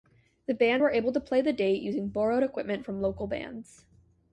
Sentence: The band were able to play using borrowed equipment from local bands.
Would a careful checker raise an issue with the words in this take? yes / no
yes